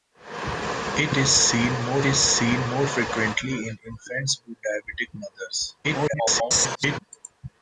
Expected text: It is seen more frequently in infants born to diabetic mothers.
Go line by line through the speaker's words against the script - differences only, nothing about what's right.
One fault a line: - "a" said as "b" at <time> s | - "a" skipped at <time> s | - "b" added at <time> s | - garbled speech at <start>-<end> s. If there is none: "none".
- "is seen more" added at 2.0 s
- "born" skipped at 4.4 s
- garbled speech at 5.8-7.0 s